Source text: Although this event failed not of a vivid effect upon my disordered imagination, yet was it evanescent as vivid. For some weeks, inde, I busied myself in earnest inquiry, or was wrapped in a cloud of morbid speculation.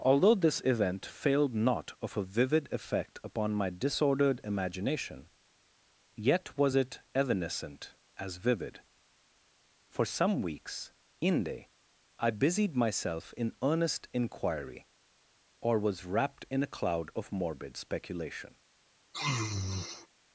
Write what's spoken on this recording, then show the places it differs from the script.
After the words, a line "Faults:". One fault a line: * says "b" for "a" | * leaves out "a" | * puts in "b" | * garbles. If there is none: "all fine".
Although this event failed not of a vivid effect upon my disordered imagination, yet was it evanescent as vivid. For some weeks, inde, I busied myself in earnest inquiry, or was wrapped in a cloud of morbid speculation.
Faults:
all fine